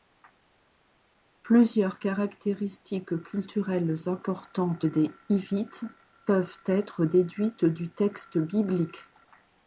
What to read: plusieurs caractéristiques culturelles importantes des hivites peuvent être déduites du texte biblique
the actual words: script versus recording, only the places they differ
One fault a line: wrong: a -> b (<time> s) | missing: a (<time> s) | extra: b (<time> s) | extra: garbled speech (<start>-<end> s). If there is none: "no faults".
no faults